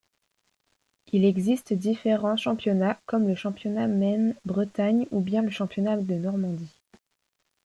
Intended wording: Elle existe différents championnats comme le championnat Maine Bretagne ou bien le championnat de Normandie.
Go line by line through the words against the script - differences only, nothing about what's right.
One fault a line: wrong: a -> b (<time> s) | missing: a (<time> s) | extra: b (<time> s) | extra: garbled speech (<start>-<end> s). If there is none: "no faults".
wrong: Elle -> Il (1.1 s)